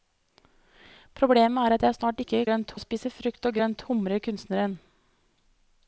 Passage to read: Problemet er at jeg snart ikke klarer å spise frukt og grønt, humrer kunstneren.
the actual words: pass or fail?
fail